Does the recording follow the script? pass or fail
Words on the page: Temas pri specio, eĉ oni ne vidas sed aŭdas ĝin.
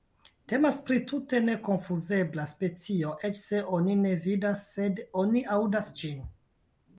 fail